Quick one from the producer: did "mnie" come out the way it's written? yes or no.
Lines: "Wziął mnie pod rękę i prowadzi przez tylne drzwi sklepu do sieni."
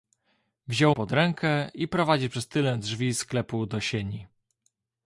no